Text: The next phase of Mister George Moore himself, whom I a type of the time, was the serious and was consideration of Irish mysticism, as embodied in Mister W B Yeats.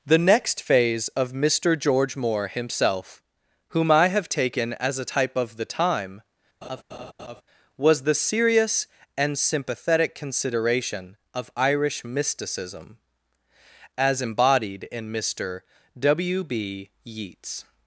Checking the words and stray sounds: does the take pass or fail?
fail